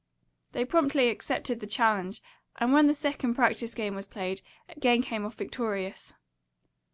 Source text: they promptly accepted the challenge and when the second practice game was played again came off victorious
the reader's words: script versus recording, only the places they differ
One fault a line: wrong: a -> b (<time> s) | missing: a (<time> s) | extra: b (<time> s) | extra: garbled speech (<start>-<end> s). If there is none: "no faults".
no faults